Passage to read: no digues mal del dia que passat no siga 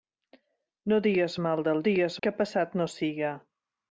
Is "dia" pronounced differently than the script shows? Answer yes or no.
yes